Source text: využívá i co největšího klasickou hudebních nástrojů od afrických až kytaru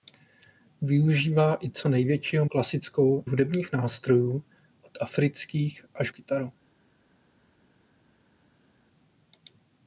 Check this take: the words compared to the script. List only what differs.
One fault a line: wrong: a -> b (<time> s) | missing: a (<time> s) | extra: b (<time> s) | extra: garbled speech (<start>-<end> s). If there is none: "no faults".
no faults